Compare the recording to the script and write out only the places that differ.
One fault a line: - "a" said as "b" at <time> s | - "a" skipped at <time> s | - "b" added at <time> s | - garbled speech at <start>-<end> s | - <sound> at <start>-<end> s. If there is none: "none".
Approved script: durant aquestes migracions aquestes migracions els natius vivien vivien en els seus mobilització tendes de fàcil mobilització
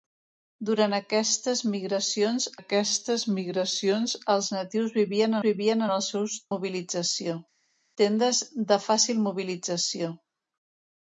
none